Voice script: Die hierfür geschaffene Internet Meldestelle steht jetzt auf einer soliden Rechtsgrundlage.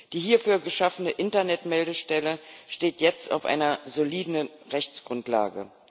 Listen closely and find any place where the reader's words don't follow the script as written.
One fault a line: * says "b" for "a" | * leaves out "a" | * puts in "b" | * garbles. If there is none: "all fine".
all fine